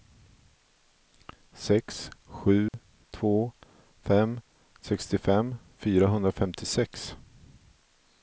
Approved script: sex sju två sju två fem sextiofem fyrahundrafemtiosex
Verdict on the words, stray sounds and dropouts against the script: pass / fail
fail